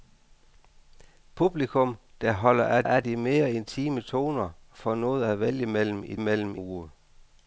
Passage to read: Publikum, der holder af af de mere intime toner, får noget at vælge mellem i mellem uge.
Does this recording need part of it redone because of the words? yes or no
no